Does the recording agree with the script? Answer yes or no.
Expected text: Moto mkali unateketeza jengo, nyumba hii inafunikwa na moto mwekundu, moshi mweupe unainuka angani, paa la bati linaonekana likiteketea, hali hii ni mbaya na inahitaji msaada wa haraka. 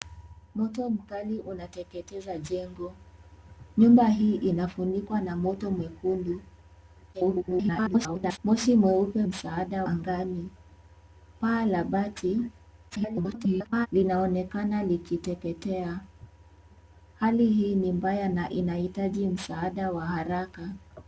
no